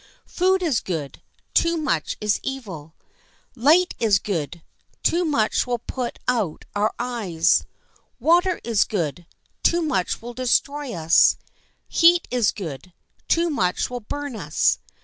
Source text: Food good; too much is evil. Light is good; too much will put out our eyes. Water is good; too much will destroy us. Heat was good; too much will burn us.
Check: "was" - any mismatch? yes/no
yes